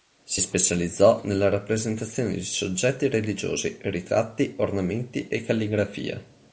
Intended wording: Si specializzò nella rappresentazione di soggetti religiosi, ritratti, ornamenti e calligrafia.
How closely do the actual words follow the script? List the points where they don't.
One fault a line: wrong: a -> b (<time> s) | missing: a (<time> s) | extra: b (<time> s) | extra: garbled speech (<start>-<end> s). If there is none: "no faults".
no faults